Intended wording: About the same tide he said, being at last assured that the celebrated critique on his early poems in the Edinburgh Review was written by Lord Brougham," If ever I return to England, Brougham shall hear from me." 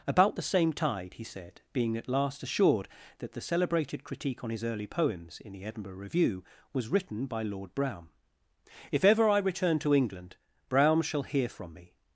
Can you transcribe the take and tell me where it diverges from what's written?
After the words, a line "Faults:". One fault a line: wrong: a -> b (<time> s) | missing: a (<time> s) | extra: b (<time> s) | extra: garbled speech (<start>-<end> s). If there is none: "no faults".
About the same tide he said, being at last assured that the celebrated critique on his early poems in the Edinburgh Review was written by Lord Brougham," If ever I return to England, Brougham shall hear from me."
Faults:
no faults